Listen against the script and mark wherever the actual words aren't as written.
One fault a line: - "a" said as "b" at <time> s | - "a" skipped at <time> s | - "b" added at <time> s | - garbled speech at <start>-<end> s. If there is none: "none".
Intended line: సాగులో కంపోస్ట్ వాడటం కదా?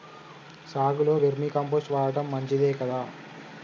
- "వేర్మి" added at 1.2 s
- "మంచిదే" added at 2.3 s